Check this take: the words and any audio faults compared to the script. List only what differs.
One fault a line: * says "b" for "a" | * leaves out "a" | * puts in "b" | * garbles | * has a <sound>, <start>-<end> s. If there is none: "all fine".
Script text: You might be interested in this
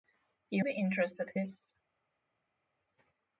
* leaves out "might"
* leaves out "in"